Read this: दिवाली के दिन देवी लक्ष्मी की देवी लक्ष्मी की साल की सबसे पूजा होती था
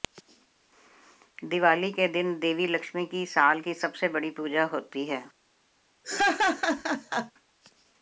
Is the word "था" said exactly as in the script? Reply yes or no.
no